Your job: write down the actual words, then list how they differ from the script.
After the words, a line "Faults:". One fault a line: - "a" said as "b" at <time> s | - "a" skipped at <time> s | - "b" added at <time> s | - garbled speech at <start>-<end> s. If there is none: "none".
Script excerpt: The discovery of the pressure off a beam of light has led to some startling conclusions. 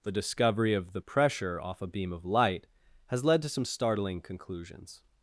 The discovery of the pressure off a beam of light has led to some startling conclusions.
Faults:
none